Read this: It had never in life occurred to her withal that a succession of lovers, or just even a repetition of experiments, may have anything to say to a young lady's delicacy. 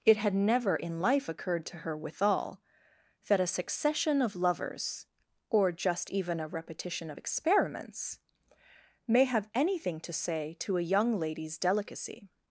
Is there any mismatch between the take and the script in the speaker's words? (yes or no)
no